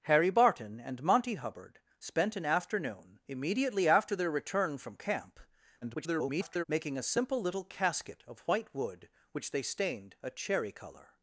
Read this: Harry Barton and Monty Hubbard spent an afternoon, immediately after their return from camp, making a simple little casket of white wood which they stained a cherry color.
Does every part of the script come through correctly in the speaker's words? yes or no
no